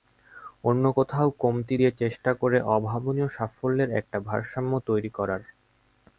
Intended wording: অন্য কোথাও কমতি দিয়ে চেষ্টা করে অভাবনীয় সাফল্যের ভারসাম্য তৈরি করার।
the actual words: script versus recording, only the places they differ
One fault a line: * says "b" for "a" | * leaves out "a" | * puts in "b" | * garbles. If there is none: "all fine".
* puts in "একটা"